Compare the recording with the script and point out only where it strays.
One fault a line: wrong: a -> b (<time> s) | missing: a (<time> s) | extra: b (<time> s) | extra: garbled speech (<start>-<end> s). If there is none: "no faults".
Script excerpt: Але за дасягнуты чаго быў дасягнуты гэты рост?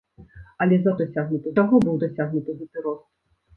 no faults